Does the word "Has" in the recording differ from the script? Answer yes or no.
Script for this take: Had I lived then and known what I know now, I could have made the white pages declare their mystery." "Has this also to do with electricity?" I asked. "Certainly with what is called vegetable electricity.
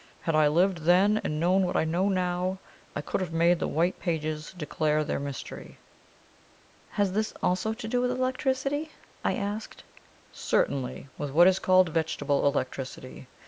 no